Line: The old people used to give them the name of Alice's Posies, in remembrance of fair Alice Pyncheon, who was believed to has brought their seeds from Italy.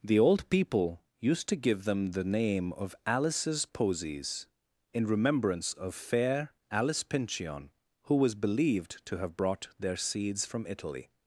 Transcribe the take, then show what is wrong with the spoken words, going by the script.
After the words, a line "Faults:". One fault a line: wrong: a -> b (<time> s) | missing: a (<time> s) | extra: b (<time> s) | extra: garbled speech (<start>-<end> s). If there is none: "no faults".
The old people used to give them the name of Alice's Posies, in remembrance of fair Alice Pyncheon, who was believed to have brought their seeds from Italy.
Faults:
wrong: has -> have (9.2 s)